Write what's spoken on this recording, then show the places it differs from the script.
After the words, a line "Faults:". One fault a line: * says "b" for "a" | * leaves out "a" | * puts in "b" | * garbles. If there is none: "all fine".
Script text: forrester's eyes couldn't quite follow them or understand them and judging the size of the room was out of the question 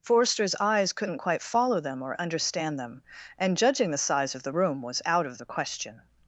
forrester's eyes couldn't quite follow them or understand them and judging the size of the room was out of the question
Faults:
all fine